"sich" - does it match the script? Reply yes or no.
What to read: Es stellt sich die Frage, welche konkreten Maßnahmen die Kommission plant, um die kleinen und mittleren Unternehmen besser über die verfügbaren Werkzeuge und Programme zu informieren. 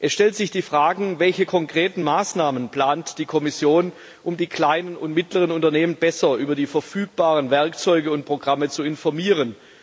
yes